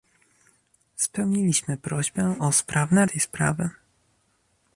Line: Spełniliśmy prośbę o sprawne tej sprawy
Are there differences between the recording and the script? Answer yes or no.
no